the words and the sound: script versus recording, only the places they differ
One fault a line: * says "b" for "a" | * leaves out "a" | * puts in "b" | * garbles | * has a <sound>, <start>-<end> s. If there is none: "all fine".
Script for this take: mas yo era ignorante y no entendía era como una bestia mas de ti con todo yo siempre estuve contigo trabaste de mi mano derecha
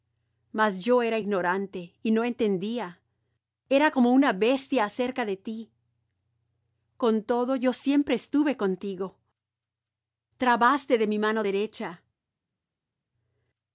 * says "acerca" for "mas"